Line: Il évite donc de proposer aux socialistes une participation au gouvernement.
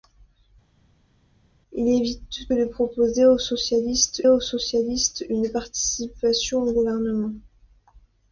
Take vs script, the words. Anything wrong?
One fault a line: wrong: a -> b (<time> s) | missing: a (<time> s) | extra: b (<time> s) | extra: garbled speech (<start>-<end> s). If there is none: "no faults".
missing: donc (2.5 s)
extra: aux socialistes (4.3 s)